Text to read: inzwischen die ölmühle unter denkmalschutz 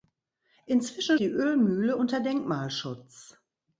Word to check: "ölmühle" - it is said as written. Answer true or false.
true